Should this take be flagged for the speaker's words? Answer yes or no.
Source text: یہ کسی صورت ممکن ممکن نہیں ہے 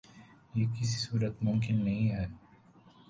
yes